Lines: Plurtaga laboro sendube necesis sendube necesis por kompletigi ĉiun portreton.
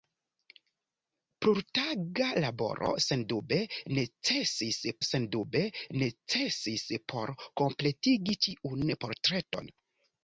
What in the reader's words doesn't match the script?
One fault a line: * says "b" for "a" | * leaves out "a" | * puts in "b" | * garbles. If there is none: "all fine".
all fine